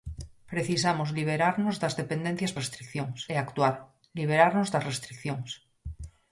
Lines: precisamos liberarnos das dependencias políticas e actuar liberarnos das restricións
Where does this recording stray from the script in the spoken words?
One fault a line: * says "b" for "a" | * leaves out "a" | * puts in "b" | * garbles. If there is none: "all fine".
* says "restricións" for "políticas"